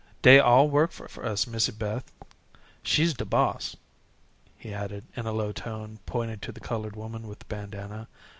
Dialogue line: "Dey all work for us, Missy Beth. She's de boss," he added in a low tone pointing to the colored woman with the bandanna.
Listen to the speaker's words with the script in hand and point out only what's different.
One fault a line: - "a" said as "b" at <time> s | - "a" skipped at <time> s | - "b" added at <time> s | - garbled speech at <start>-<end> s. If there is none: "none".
- "for" added at 1.1 s